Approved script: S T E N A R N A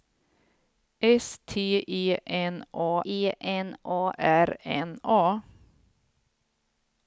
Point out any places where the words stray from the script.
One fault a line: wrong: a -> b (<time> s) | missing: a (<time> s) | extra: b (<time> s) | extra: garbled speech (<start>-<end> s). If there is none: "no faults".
extra: E N A (3.0 s)